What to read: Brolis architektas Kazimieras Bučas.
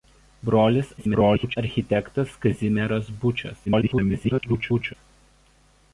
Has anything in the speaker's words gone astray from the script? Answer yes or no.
yes